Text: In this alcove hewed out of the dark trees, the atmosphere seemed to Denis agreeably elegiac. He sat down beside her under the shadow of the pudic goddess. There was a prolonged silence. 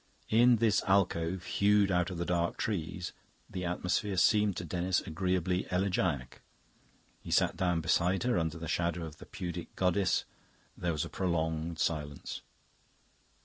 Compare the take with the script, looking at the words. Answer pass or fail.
pass